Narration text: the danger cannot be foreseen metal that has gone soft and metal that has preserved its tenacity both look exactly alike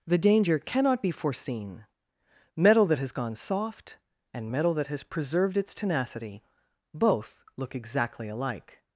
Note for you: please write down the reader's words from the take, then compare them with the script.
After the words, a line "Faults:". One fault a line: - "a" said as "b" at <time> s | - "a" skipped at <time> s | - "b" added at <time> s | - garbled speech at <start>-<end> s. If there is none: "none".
the danger cannot be foreseen metal that has gone soft and metal that has preserved its tenacity both look exactly alike
Faults:
none